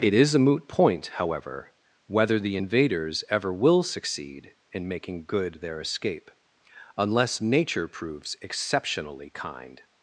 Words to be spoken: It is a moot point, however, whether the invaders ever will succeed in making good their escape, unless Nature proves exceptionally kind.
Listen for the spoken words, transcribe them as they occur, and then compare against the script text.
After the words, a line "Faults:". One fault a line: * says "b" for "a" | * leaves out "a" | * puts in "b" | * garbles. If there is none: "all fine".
It is a moot point, however, whether the invaders ever will succeed in making good their escape, unless Nature proves exceptionally kind.
Faults:
all fine